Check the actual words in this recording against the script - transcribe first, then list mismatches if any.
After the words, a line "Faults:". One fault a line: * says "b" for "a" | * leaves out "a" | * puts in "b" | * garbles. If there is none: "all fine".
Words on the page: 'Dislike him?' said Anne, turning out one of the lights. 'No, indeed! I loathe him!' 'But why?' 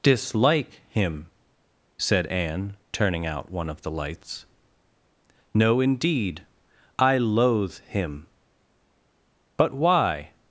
'Dislike him?' said Anne, turning out one of the lights. 'No, indeed! I loathe him!' 'But why?'
Faults:
all fine